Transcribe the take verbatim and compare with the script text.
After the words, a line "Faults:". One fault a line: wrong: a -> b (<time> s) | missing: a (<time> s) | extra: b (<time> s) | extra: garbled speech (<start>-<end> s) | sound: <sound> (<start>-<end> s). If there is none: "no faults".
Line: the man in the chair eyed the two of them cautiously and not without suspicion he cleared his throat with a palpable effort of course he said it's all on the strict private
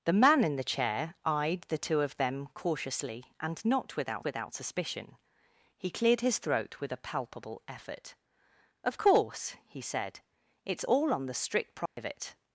the man in the chair eyed the two of them cautiously and not without without suspicion he cleared his throat with a palpable effort of course he said it's all on the strict private
Faults:
extra: without (4.2 s)
sound: dropout (11.9-12.0 s)